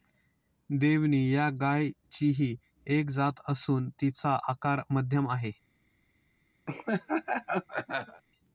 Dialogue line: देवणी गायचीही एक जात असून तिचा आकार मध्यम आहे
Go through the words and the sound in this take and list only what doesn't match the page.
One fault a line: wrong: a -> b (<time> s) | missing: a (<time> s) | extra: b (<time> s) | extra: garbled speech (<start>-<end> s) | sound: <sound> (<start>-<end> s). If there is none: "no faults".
extra: या (1.3 s)
sound: laugh (6.7-8.2 s)